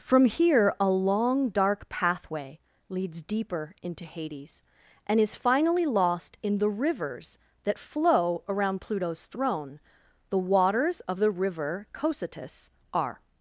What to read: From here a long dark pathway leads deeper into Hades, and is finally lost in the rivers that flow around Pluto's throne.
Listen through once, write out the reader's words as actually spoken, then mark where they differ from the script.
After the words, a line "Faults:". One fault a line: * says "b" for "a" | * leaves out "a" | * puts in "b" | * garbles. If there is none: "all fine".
From here a long dark pathway leads deeper into Hades, and is finally lost in the rivers that flow around Pluto's throne. The waters of the river Cocytus are
Faults:
* puts in "The waters of the river Cocytus are"